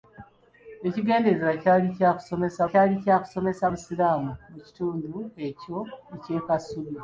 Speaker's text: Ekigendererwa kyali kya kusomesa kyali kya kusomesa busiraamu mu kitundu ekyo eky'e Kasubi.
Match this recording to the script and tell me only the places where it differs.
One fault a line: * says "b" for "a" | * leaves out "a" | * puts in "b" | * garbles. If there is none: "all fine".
all fine